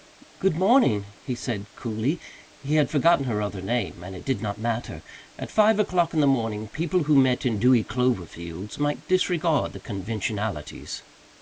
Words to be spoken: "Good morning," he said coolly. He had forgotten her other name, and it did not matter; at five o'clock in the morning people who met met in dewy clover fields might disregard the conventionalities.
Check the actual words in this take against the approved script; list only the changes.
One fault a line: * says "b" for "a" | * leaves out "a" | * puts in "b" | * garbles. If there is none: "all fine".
* leaves out "met"